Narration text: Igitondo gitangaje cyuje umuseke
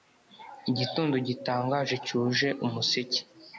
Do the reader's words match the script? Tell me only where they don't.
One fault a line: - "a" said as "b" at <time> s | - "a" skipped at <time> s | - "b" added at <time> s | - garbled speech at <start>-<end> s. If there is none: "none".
none